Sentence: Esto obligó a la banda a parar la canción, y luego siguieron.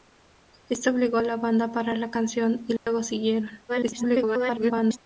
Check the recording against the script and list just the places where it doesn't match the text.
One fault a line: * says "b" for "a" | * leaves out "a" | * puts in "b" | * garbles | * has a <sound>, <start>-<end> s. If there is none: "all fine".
* has a dropout, 2.8-2.9 s
* garbles